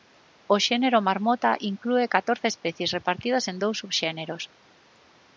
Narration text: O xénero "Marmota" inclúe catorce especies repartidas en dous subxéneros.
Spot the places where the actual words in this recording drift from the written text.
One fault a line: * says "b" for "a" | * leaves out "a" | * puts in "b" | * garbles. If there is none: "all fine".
all fine